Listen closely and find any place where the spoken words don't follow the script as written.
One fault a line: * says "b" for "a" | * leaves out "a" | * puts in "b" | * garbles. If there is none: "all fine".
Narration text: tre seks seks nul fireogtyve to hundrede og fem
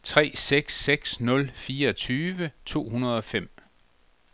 all fine